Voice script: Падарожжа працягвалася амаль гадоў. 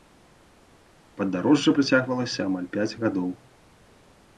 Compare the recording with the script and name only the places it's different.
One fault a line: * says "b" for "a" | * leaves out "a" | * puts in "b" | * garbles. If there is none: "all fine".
* puts in "пяць"